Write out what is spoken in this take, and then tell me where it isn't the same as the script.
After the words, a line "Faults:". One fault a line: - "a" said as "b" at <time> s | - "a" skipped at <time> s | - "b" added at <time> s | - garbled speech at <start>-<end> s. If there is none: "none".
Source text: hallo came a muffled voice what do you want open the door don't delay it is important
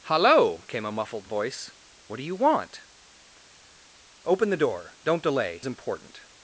hallo came a muffled voice what do you want open the door don't delay important
Faults:
- "it is" skipped at 5.6 s